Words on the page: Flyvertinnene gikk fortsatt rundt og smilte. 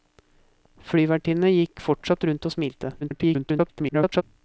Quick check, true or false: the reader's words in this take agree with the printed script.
false